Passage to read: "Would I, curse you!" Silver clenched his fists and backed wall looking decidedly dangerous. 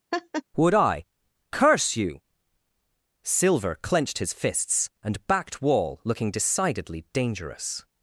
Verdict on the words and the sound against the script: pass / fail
fail